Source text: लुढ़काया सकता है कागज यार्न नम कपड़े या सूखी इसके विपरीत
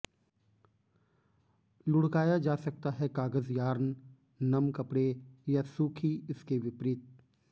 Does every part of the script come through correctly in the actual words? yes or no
no